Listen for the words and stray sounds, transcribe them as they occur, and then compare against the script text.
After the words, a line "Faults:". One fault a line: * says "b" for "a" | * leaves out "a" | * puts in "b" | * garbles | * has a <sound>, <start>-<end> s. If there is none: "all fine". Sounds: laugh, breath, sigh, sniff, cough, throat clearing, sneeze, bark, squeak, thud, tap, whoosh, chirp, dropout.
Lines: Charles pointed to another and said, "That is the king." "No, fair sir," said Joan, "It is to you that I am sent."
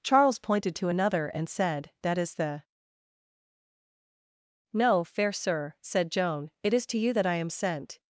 Charles pointed to another and said, "That is the." "No, fair sir," said Joan, "It is to you that I am sent."
Faults:
* leaves out "king"